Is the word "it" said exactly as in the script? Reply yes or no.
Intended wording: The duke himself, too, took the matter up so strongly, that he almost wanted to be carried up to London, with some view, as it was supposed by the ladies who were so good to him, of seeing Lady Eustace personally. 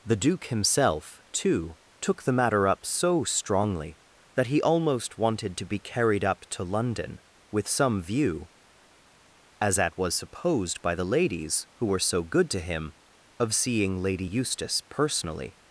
no